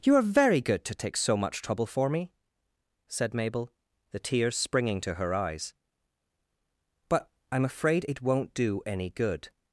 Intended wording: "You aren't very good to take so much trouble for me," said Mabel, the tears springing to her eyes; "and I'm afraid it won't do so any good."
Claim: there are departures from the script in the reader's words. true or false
true